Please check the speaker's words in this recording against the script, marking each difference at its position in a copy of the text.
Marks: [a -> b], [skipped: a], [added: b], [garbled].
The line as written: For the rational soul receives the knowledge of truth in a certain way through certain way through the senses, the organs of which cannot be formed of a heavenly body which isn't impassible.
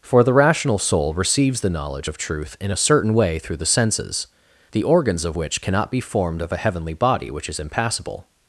For the rational soul receives the knowledge of truth in a certain way through [skipped: certain way through] the senses, the organs of which cannot be formed of a heavenly body which [isn't -> is] impassible.